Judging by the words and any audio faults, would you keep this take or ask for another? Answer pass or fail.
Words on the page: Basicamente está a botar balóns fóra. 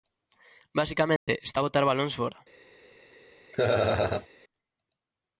fail